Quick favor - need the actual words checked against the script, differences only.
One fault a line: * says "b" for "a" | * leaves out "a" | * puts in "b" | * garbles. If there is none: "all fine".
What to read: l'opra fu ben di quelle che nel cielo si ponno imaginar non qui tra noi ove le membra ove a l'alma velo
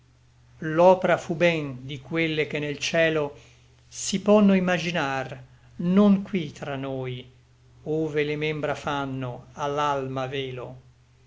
* says "fanno" for "ove"